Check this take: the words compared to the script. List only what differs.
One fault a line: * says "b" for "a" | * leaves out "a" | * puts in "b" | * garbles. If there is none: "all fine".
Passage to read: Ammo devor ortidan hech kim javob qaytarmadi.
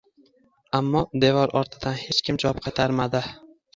all fine